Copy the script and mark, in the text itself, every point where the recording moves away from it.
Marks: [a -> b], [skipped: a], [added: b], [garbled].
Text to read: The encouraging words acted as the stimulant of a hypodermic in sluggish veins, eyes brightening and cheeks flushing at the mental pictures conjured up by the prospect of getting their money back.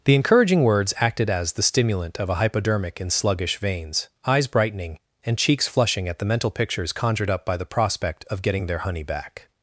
The encouraging words acted as the stimulant of a hypodermic in sluggish veins, eyes brightening and cheeks flushing at the mental pictures conjured up by the prospect of getting their [money -> honey] back.